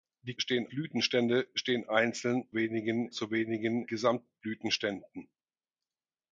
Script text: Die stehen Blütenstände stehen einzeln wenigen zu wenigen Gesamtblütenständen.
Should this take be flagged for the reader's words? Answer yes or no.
no